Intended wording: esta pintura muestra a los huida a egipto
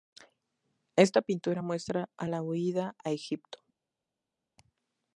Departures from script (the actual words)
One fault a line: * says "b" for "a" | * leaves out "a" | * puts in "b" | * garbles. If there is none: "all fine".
* says "la" for "los"